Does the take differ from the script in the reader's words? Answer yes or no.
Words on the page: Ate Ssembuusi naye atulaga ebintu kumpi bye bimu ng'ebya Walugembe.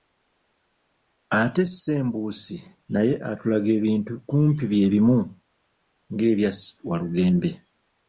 no